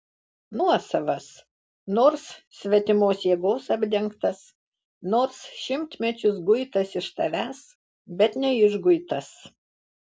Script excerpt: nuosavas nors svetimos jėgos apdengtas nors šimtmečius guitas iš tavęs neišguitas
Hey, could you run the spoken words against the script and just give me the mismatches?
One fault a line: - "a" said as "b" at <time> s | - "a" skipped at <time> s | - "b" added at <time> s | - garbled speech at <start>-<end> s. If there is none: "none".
- "bet" added at 8.2 s